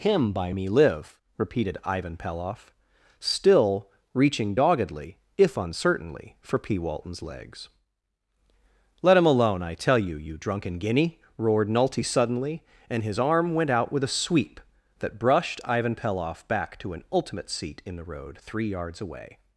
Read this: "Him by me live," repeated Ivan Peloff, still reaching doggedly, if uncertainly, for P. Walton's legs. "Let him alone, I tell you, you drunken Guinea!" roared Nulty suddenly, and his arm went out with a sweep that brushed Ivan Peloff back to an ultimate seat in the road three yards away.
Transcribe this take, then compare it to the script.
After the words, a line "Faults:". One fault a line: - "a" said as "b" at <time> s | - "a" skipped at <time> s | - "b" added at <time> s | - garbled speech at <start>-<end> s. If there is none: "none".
"Him by me live," repeated Ivan Peloff, still reaching doggedly, if uncertainly, for P. Walton's legs. "Let him alone, I tell you, you drunken Guinea!" roared Nulty suddenly, and his arm went out with a sweep that brushed Ivan Peloff back to an ultimate seat in the road three yards away.
Faults:
none